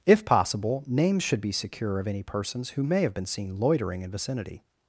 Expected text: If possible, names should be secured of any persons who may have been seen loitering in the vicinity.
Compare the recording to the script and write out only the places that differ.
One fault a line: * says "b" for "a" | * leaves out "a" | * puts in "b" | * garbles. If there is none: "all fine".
* says "secure" for "secured"
* leaves out "the"